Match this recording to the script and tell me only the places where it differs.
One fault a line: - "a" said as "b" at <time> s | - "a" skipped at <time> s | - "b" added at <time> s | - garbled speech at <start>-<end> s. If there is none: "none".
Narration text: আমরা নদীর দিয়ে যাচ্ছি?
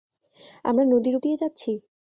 none